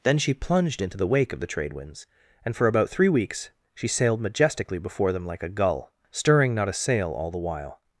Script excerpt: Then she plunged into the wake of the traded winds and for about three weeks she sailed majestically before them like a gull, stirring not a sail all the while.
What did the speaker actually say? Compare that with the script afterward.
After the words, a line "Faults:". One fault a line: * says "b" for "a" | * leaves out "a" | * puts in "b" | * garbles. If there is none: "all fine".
Then she plunged into the wake of the trade winds and for about three weeks she sailed majestically before them like a gull, stirring not a sail all the while.
Faults:
* says "trade" for "traded"